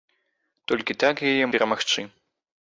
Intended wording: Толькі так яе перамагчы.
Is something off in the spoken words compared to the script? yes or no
no